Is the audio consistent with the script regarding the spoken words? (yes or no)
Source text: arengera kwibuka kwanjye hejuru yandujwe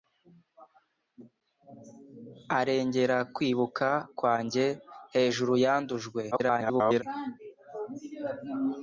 no